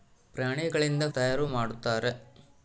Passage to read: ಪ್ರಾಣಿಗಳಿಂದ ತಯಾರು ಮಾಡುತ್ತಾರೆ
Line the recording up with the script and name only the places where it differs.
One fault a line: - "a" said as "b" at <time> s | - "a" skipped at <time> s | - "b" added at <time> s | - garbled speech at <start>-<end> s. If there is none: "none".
none